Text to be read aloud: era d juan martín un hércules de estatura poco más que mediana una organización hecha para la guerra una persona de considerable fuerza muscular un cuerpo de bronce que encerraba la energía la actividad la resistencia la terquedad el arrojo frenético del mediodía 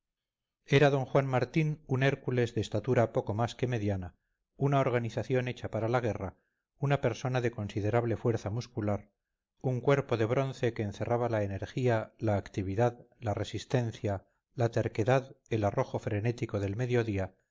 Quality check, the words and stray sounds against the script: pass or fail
pass